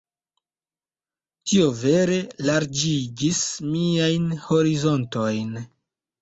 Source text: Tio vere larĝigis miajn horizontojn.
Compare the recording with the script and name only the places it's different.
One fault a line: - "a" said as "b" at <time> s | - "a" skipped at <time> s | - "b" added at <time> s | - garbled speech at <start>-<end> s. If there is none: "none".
none